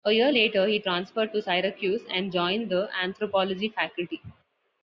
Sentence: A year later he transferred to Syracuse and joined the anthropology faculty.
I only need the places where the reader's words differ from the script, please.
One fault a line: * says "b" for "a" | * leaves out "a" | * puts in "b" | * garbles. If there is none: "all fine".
all fine